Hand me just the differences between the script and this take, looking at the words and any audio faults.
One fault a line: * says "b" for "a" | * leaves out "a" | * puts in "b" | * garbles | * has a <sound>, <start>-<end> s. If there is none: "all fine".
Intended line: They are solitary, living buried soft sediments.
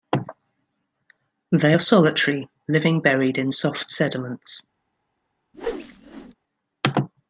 * puts in "in"
* has a whoosh, 5.5-6.3 s